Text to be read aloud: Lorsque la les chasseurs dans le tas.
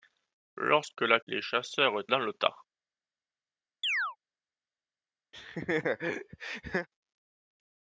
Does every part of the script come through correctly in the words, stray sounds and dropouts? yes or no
no